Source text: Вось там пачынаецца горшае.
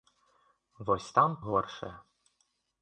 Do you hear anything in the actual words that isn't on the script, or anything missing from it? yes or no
yes